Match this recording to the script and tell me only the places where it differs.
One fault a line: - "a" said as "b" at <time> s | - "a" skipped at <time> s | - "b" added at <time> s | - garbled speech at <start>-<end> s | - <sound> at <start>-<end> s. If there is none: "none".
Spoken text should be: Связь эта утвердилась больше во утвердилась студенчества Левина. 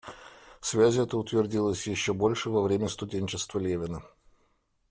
- "еще" added at 1.9 s
- "утвердилась" said as "время" at 2.6 s